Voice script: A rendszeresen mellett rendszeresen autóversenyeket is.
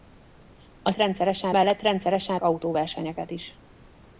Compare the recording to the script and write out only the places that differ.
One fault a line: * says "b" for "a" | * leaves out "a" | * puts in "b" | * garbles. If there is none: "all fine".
all fine